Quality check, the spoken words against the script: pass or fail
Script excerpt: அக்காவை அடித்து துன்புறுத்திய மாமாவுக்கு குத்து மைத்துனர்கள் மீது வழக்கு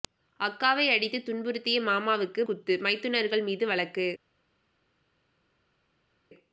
pass